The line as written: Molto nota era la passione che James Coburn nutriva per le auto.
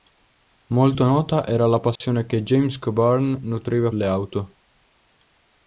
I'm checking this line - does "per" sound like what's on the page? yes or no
no